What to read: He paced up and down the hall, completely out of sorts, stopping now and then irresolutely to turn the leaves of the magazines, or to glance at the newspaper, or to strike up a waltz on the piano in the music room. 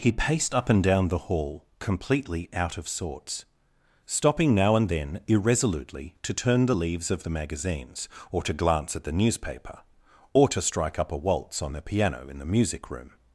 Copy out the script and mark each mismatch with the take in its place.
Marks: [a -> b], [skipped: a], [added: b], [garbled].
He paced up and down the hall, completely out of sorts, stopping now and then irresolutely to turn the leaves of the magazines, or to glance at the newspaper, or to strike up a waltz on the piano in the music room.